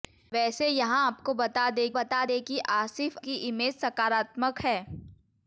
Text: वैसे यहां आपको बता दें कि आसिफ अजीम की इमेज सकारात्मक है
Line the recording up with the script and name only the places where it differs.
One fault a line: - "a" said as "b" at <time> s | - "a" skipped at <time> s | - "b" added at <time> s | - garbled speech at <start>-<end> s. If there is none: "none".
- "बता दें" added at 2.0 s
- "अजीम" skipped at 3.2 s